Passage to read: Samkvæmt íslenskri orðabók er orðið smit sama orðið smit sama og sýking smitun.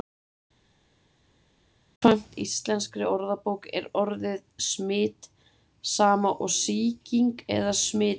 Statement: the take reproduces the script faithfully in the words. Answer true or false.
false